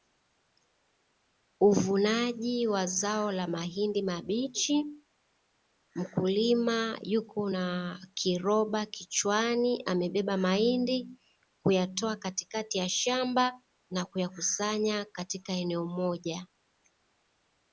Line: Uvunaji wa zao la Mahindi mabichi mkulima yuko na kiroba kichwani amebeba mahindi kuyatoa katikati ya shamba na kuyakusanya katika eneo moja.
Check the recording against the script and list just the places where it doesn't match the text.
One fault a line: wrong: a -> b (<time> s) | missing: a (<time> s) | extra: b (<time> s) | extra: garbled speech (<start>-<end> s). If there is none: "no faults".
no faults